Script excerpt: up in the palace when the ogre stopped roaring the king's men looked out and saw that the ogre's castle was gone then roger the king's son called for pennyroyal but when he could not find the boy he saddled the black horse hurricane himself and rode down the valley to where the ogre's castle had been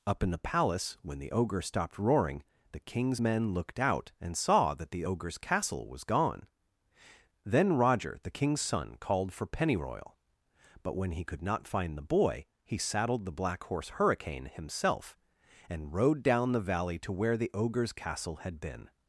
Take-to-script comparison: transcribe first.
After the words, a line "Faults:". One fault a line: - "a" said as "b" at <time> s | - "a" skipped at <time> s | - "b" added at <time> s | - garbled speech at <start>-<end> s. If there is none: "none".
up in the palace when the ogre stopped roaring the king's men looked out and saw that the ogre's castle was gone then roger the king's son called for pennyroyal but when he could not find the boy he saddled the black horse hurricane himself and rode down the valley to where the ogre's castle had been
Faults:
none